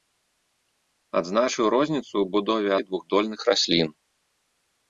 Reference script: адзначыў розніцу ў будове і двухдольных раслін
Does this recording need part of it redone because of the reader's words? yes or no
no